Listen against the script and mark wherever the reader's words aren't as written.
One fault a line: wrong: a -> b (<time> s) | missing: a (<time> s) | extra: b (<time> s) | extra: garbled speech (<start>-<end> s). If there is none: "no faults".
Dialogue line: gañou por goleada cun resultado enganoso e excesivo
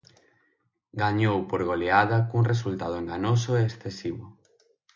no faults